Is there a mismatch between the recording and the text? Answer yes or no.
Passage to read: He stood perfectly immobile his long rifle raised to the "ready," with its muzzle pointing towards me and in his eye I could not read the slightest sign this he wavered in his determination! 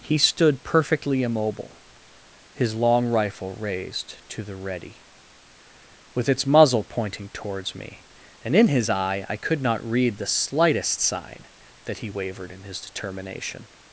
yes